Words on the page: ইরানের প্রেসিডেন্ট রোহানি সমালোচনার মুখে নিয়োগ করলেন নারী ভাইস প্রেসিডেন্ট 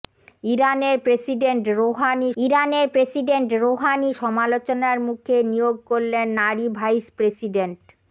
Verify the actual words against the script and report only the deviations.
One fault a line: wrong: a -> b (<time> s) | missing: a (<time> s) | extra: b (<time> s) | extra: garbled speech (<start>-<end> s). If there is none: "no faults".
extra: ইরানের প্রেসিডেন্ট রোহানি (2.4 s)